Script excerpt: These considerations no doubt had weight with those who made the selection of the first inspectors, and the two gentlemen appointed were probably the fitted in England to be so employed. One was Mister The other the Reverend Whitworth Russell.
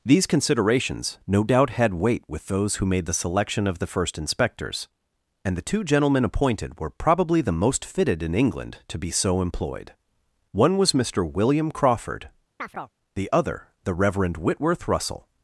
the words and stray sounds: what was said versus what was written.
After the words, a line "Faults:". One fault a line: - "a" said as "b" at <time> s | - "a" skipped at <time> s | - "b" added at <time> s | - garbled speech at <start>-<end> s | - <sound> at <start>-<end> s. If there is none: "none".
These considerations no doubt had weight with those who made the selection of the first inspectors, and the two gentlemen appointed were probably the most fitted in England to be so employed. One was Mister William Crawford, the other the Reverend Whitworth Russell.
Faults:
- "most" added at 7.5 s
- "William Crawford" added at 11.2 s
- chirp at 12.6-12.9 s